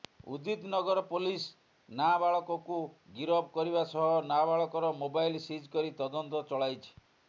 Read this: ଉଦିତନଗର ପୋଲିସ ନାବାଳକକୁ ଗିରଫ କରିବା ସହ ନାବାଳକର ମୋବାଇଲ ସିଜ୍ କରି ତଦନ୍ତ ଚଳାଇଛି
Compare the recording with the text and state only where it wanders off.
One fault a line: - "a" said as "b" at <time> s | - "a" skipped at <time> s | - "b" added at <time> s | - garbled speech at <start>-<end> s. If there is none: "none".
none